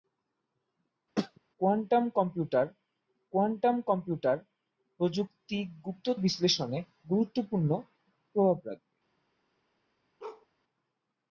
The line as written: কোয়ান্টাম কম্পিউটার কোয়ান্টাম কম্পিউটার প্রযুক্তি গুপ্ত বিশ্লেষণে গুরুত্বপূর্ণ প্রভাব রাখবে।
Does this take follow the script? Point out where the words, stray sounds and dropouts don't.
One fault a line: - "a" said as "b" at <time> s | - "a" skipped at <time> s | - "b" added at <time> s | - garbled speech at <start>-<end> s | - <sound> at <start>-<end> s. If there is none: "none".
- throat clearing at 1.2-1.4 s
- bark at 10.2-10.5 s